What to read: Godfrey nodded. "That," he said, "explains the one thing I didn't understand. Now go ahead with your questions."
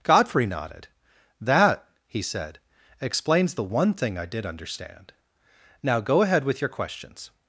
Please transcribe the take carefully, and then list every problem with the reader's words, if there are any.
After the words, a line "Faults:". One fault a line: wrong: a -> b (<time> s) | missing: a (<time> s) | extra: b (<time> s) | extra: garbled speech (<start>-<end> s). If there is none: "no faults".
Godfrey nodded. "That," he said, "explains the one thing I did understand. Now go ahead with your questions."
Faults:
wrong: didn't -> did (4.3 s)